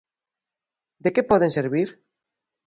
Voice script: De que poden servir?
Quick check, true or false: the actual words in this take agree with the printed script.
true